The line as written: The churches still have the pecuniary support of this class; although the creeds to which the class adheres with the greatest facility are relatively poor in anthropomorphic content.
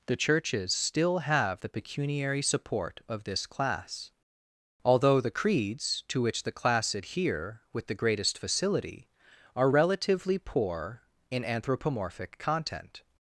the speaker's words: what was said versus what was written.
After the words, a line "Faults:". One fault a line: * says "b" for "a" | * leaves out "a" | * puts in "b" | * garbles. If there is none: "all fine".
The churches still have the pecuniary support of this class; although the creeds to which the class adhere with the greatest facility are relatively poor in anthropomorphic content.
Faults:
* says "adhere" for "adheres"